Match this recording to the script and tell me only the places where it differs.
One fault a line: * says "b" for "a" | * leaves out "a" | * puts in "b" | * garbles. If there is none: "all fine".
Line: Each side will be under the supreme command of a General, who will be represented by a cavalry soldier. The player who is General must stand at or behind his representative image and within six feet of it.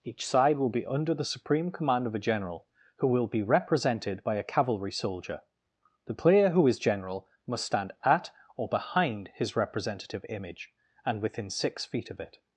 all fine